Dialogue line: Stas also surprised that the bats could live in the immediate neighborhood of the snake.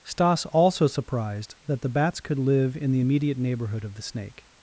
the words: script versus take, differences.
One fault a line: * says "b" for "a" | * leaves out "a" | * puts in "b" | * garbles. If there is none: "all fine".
all fine